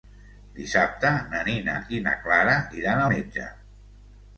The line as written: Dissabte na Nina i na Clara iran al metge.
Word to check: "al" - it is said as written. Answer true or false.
false